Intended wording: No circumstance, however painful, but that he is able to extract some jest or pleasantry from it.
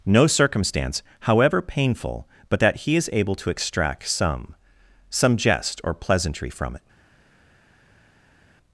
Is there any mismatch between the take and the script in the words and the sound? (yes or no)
yes